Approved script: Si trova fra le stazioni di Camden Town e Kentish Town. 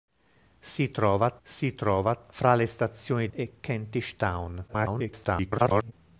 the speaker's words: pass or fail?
fail